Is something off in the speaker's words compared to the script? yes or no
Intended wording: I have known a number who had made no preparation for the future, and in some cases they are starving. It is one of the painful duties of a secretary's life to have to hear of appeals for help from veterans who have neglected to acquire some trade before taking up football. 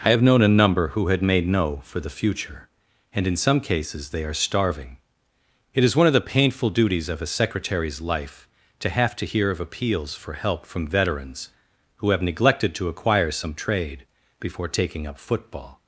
yes